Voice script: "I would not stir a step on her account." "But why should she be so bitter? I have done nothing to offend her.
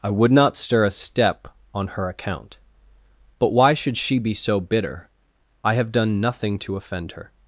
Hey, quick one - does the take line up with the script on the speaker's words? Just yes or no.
yes